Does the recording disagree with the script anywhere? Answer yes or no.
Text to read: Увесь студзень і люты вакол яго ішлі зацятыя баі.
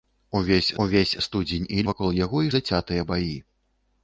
yes